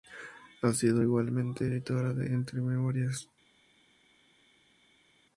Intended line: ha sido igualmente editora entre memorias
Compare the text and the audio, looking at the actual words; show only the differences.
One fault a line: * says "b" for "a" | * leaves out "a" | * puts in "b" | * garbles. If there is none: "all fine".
* puts in "de"